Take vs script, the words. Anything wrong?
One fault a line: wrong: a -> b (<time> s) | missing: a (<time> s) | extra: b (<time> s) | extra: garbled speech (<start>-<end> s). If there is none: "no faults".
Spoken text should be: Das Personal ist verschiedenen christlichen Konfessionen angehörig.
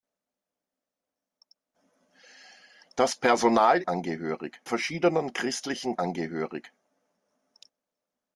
wrong: ist -> angehörig (3.8 s)
missing: Konfessionen (5.9 s)